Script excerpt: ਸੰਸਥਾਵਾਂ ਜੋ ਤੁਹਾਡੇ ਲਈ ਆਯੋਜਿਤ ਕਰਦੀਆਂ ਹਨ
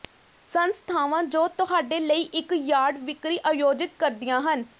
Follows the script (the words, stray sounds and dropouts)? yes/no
no